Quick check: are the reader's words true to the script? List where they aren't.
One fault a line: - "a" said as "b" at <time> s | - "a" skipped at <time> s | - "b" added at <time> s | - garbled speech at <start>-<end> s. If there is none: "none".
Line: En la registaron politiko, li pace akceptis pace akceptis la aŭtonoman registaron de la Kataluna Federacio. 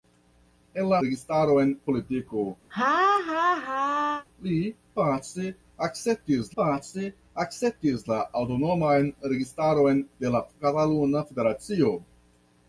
none